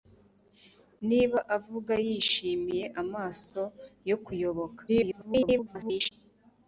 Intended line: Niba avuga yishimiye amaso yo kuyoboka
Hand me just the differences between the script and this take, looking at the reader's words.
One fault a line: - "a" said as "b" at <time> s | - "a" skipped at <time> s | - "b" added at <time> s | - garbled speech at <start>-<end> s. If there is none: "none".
- garbled speech at 4.9-6.1 s